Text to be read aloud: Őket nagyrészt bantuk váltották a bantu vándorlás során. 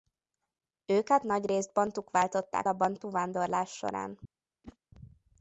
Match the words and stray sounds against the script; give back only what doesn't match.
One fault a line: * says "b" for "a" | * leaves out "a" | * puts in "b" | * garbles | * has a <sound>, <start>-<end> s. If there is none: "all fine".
* has a whoosh, 4.6-4.8 s